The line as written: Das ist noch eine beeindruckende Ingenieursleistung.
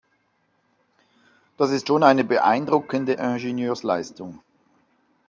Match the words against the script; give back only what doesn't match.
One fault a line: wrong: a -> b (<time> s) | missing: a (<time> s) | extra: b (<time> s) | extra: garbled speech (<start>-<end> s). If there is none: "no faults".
wrong: noch -> schon (1.9 s)